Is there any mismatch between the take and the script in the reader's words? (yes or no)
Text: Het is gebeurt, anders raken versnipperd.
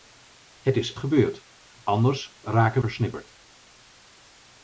no